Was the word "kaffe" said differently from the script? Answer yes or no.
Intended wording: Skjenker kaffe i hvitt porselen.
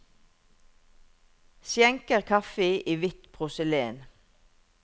no